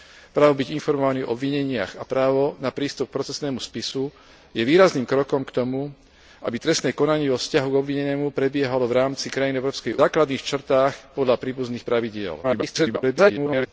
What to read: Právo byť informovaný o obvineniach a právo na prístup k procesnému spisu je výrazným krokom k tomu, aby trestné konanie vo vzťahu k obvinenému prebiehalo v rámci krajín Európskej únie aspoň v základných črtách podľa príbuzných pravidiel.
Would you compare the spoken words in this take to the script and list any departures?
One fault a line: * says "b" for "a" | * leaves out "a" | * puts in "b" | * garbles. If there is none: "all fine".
* leaves out "únie aspoň v"
* garbles